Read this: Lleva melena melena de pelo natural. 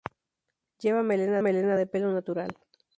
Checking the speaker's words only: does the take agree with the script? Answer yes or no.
yes